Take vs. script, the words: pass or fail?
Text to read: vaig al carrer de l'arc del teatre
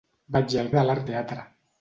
fail